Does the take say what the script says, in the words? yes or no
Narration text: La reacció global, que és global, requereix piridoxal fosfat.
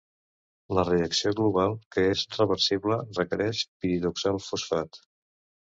no